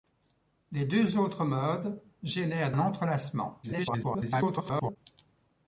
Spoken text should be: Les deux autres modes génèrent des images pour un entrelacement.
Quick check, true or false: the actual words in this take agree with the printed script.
false